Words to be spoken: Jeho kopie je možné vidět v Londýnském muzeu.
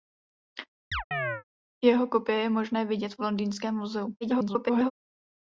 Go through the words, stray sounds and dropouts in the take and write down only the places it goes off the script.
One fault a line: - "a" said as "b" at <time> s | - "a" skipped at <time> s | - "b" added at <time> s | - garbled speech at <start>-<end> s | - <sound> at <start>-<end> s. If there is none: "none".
- chirp at 0.9-1.4 s
- garbled speech at 4.2-4.9 s